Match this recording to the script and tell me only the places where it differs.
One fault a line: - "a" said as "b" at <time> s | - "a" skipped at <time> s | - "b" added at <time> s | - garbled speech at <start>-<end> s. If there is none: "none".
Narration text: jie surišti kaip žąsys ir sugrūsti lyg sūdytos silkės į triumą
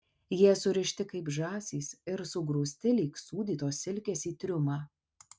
none